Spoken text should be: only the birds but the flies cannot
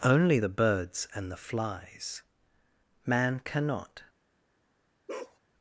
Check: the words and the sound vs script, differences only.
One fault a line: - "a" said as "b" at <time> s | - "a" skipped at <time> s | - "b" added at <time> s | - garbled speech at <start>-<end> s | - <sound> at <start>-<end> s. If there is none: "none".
- "but" said as "and" at 1.1 s
- "man" added at 3.0 s
- bark at 5.1-5.4 s